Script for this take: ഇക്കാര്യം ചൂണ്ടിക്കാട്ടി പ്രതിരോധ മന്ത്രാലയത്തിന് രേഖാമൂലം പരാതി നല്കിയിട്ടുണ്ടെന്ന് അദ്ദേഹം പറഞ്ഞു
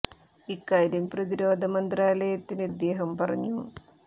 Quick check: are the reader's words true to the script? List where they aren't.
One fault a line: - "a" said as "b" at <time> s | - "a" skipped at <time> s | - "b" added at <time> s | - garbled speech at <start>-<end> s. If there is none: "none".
- "ചൂണ്ടിക്കാട്ടി" skipped at 1.0 s
- "രേഖാമൂലം പരാതി നല്കിയിട്ടുണ്ടെന്ന്" skipped at 2.7 s